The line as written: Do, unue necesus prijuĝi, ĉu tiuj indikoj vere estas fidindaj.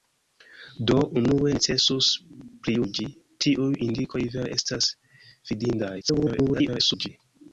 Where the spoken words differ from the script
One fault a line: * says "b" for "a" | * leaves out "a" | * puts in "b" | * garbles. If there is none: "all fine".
* leaves out "ĉu"
* garbles